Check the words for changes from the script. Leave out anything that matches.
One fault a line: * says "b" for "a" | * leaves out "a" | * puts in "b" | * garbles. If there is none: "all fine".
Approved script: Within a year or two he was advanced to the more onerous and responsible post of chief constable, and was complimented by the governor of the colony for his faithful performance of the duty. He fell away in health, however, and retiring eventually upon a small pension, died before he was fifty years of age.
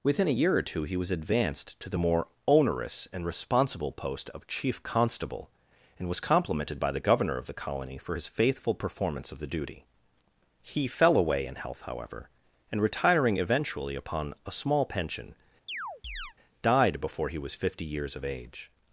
all fine